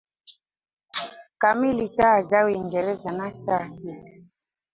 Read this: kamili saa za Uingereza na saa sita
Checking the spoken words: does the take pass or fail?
pass